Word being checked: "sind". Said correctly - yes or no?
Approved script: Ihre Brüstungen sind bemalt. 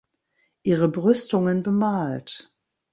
no